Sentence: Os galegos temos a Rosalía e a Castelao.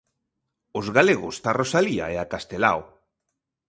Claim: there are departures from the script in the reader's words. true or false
true